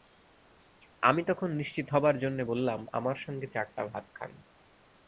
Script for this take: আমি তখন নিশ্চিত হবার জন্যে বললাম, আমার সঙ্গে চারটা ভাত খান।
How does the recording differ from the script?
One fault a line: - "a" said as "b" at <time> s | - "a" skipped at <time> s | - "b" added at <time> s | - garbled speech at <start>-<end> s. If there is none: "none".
none